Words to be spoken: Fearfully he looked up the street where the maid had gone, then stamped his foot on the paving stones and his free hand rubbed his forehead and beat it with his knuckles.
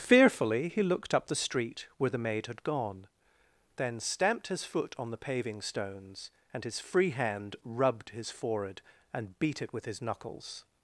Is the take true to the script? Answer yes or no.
yes